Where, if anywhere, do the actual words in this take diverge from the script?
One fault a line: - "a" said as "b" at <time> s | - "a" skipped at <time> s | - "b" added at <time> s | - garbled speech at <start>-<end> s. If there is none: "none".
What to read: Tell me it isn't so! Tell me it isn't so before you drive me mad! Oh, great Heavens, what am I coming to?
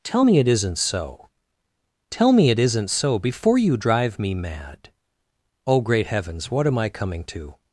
none